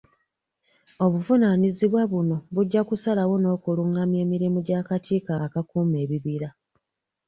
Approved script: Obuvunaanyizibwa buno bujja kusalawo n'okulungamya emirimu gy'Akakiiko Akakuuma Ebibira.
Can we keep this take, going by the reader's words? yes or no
yes